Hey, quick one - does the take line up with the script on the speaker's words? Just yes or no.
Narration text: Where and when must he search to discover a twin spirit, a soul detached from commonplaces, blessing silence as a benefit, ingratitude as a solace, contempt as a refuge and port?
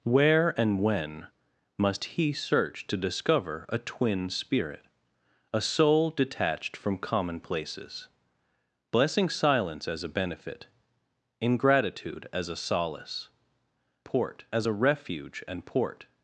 no